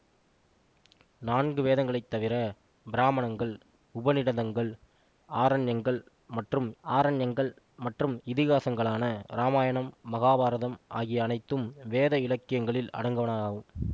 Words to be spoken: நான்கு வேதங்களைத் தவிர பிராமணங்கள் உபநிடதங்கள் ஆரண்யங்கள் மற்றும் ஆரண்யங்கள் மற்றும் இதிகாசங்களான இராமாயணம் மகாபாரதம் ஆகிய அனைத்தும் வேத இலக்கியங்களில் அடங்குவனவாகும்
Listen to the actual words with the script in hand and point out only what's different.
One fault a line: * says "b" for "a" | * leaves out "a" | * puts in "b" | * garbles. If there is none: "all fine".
all fine